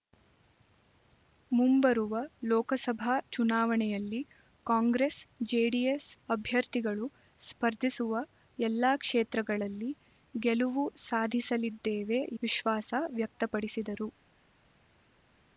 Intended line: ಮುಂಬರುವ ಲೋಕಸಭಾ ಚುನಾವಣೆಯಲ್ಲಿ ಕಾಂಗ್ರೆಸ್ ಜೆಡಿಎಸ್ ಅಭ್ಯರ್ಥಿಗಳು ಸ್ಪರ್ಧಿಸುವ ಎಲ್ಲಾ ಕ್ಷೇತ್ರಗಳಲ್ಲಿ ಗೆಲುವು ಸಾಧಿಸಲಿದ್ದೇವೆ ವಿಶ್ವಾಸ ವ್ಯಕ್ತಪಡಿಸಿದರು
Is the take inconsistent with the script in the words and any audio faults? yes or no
no